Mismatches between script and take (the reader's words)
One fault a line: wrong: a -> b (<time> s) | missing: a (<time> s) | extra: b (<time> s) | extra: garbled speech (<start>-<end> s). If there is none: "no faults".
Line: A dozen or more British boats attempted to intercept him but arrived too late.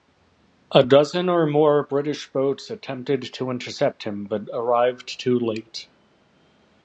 no faults